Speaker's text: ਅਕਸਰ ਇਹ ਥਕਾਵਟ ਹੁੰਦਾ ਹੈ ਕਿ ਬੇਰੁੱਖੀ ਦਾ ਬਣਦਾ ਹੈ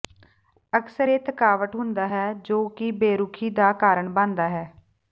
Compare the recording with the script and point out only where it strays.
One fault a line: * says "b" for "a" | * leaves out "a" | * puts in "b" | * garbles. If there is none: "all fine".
* puts in "ਜੋ"
* puts in "ਕਾਰਨ"